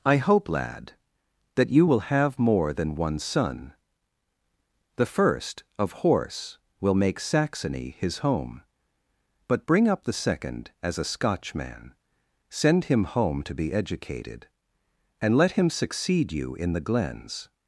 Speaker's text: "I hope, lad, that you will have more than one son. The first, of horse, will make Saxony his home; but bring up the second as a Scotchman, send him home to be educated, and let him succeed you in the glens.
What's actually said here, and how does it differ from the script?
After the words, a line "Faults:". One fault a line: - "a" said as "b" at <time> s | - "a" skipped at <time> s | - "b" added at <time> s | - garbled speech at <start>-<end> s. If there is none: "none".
"I hope, lad, that you will have more than one son. The first, of horse, will make Saxony his home; but bring up the second as a Scotchman, send him home to be educated, and let him succeed you in the glens.
Faults:
none